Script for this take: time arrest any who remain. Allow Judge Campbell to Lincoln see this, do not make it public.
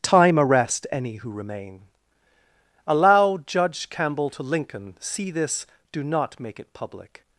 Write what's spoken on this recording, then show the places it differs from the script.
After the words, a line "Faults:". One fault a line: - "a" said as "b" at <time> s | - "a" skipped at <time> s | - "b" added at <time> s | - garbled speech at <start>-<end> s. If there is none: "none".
time arrest any who remain. Allow Judge Campbell to Lincoln see this, do not make it public.
Faults:
none